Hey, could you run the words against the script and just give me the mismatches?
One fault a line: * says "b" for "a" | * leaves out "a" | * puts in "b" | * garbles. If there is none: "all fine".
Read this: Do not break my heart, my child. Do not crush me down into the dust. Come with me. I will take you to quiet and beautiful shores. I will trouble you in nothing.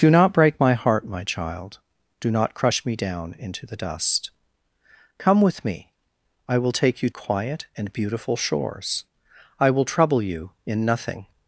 * leaves out "to"